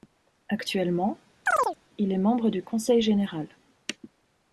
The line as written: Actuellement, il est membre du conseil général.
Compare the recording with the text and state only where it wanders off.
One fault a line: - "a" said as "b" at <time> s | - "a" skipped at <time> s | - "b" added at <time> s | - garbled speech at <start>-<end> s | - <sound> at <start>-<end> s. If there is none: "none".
- chirp at 1.5-1.8 s